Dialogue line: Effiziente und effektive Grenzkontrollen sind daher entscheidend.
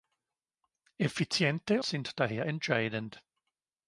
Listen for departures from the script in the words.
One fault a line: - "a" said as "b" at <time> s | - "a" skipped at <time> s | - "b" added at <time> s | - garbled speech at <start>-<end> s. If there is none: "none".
- "und effektive Grenzkontrollen" skipped at 1.8 s